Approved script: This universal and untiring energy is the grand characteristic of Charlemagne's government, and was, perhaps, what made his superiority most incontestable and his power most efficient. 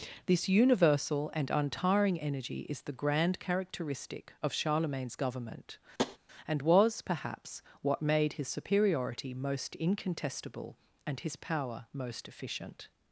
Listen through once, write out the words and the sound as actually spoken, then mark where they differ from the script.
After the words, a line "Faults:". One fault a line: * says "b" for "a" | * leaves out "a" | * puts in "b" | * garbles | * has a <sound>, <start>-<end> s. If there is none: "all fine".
This universal and untiring energy is the grand characteristic of Charlemagne's government, and was, perhaps, what made his superiority most incontestable and his power most efficient.
Faults:
* has a tap, 6.0-6.2 s